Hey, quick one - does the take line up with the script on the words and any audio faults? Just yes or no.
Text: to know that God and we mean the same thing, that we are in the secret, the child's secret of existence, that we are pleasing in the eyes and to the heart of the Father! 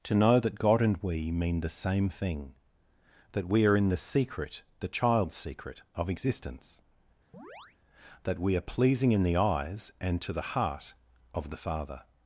no